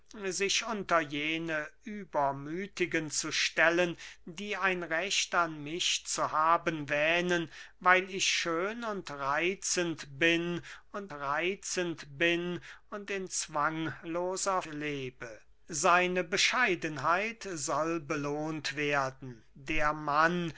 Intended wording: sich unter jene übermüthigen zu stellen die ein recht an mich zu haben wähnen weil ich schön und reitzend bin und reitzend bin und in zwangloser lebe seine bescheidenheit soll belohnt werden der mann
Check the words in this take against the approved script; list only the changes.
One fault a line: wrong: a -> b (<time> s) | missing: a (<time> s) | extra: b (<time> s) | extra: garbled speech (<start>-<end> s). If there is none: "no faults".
no faults